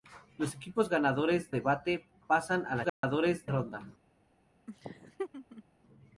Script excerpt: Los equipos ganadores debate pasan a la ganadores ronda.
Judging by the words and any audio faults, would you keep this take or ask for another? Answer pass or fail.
fail